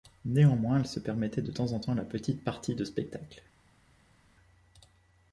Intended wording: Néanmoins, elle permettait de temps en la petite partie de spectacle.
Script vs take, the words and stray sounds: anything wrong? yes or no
yes